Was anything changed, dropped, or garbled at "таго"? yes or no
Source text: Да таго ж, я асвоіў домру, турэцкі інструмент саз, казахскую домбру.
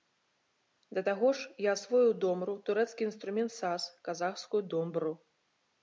no